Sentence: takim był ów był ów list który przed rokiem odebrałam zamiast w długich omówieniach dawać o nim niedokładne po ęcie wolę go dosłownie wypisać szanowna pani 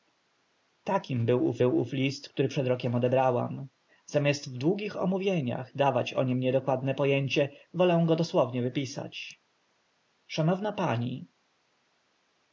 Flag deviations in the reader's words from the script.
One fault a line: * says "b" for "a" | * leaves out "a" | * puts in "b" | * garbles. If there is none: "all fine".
all fine